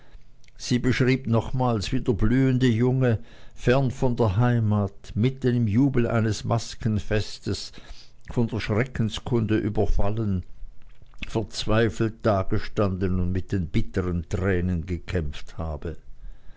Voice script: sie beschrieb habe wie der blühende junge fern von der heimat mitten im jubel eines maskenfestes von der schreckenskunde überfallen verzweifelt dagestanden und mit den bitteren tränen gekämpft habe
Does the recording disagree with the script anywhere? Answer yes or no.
yes